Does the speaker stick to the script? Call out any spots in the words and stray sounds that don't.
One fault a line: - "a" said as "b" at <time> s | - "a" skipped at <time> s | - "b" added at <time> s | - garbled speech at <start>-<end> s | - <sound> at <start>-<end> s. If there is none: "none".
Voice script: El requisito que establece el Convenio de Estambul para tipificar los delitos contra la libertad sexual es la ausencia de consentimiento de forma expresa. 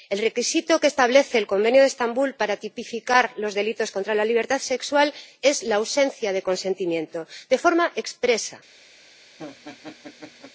- laugh at 9.4-10.5 s